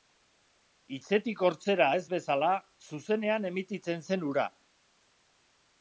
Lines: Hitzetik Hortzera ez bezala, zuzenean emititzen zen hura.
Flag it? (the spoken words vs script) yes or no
no